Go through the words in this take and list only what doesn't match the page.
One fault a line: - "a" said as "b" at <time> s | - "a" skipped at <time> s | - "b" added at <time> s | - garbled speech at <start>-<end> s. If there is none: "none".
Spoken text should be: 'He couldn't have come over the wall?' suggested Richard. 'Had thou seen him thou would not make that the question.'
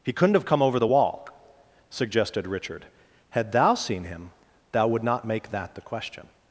none